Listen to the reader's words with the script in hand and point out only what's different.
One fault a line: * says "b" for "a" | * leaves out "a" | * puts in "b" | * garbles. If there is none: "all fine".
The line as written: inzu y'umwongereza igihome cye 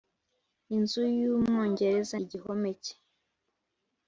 all fine